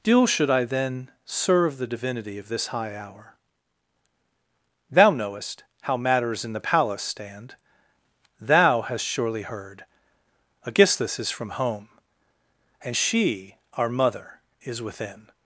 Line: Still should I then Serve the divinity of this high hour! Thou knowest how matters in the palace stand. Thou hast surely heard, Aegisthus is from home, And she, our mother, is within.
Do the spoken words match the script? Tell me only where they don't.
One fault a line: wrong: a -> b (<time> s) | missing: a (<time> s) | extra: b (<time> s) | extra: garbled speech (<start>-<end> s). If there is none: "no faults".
no faults